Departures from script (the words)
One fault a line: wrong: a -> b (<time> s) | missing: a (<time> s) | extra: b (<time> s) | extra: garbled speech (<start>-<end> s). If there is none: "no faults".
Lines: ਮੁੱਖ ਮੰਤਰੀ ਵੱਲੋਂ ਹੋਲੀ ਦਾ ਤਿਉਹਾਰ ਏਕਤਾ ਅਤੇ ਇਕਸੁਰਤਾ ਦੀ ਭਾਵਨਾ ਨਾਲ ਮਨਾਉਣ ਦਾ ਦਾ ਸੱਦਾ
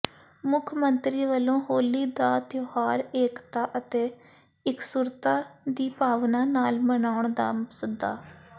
missing: ਦਾ (7.5 s)